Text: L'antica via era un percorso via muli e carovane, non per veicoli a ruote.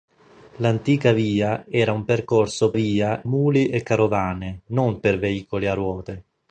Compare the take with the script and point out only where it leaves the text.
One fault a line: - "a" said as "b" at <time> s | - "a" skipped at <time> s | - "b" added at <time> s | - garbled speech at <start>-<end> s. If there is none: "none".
none